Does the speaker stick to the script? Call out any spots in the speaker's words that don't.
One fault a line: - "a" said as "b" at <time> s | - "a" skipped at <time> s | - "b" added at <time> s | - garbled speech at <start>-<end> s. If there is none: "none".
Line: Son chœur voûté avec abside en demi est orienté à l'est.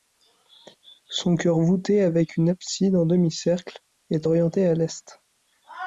- "une" added at 2.4 s
- "cercle" added at 3.3 s